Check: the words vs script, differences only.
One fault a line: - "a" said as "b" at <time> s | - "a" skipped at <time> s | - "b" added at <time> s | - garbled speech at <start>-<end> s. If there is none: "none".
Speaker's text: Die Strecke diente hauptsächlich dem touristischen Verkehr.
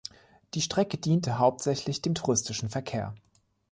none